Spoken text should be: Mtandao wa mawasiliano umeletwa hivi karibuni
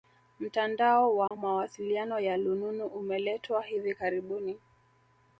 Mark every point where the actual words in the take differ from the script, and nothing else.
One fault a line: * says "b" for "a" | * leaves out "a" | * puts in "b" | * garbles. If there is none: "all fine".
* puts in "ya lununu"